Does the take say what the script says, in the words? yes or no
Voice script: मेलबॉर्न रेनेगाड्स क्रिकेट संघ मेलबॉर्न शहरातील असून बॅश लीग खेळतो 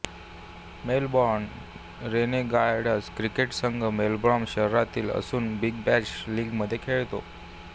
no